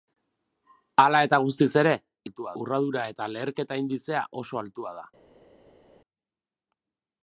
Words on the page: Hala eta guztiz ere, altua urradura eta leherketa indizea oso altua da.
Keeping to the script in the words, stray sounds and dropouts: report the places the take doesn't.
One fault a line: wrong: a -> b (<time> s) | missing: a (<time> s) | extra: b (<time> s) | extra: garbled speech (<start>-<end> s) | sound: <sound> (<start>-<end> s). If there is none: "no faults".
no faults